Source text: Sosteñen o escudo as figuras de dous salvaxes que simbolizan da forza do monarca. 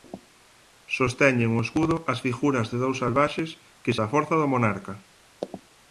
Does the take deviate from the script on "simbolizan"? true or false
true